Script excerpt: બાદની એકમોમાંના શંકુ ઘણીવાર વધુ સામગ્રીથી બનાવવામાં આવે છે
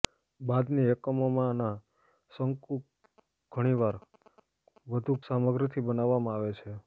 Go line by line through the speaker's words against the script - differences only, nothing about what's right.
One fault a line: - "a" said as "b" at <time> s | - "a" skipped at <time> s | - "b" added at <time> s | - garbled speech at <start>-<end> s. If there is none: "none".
none